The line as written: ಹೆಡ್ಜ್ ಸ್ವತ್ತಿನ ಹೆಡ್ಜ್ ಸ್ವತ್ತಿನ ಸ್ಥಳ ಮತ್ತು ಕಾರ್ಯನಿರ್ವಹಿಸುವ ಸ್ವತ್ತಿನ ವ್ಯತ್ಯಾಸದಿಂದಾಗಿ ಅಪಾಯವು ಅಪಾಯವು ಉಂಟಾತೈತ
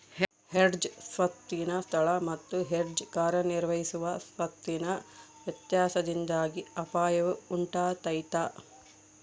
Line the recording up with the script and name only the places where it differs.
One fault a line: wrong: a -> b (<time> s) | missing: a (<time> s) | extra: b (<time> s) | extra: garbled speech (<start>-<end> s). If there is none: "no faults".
missing: ಹೆಡ್ಜ್ ಸ್ವತ್ತಿನ (1.7 s)
extra: ಹೆಡ್ಜ್ (2.6 s)
missing: ಅಪಾಯವು (7.3 s)